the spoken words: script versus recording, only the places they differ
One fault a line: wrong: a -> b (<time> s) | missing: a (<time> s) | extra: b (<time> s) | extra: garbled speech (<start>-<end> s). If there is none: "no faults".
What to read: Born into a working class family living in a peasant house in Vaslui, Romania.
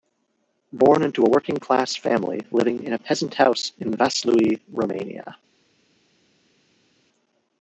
no faults